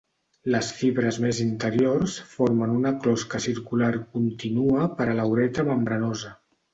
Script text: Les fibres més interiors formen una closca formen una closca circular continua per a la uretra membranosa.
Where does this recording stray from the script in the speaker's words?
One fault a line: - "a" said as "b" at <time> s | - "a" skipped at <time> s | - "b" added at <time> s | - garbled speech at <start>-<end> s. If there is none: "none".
- "formen una closca" skipped at 3.4 s